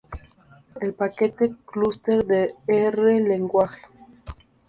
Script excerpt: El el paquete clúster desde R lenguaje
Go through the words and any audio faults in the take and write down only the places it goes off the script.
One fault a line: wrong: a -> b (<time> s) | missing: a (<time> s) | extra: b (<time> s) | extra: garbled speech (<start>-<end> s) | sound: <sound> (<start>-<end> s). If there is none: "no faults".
missing: el (0.9 s)
wrong: desde -> de (2.3 s)